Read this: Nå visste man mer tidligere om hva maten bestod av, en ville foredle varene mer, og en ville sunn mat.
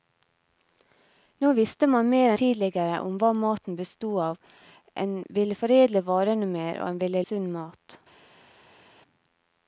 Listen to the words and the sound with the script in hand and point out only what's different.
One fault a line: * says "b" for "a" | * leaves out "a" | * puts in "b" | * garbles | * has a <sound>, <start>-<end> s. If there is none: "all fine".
all fine